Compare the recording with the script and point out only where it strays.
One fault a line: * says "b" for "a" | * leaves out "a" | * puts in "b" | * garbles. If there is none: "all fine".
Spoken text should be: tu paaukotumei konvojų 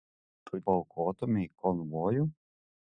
all fine